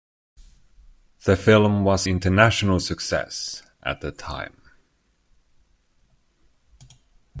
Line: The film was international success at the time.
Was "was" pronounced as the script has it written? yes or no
yes